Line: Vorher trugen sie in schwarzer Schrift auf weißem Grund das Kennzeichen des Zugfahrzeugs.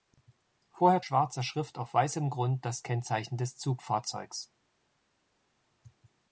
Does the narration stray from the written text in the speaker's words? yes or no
yes